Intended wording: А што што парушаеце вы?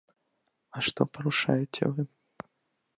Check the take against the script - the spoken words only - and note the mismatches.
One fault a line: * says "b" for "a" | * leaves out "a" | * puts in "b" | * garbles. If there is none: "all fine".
* leaves out "што"